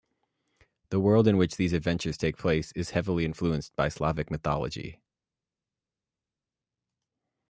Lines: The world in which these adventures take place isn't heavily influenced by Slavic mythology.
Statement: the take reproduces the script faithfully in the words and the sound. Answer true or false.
false